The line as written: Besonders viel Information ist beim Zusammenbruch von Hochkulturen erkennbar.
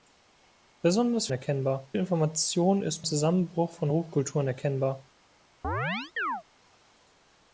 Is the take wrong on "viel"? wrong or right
wrong